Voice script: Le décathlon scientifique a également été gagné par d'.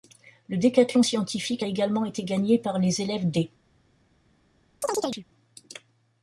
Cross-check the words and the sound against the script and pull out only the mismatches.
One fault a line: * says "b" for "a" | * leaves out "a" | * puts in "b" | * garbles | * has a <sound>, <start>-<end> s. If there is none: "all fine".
* puts in "les élèves"
* has a chirp, 4.8-5.3 s